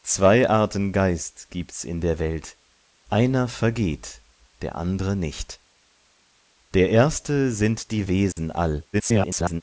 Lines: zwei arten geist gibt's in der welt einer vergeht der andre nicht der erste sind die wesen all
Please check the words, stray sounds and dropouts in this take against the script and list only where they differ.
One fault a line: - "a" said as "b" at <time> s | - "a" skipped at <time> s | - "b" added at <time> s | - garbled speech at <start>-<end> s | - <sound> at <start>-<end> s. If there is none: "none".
- dropout at 8.3-8.4 s
- garbled speech at 8.9-9.6 s